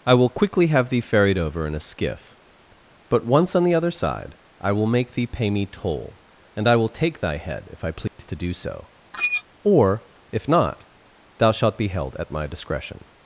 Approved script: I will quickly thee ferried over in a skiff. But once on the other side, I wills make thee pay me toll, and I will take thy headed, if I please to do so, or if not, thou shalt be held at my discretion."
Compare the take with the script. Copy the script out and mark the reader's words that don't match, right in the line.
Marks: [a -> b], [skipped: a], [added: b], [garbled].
I will quickly [added: have] thee ferried over in a skiff. But once on the other side, I [wills -> will] make thee pay me toll, and I will take thy [headed, -> head] if I please to do so, or if not, thou shalt be held at my discretion."